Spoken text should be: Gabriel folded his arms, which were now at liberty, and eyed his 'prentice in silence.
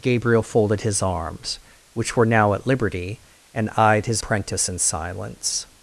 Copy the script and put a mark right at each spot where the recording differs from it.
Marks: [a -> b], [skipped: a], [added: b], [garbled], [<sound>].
Gabriel folded his arms, which were now at liberty, and eyed his 'prentice in silence.